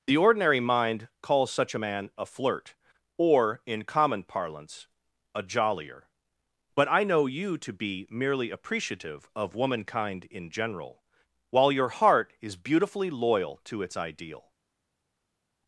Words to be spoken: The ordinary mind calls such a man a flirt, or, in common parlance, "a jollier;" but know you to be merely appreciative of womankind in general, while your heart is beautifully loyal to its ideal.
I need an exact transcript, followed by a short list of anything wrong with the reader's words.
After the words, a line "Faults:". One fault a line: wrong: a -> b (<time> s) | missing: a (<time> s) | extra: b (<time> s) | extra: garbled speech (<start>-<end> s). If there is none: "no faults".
The ordinary mind calls such a man a flirt, or, in common parlance, "a jollier;" but I know you to be merely appreciative of womankind in general, while your heart is beautifully loyal to its ideal.
Faults:
extra: I (6.9 s)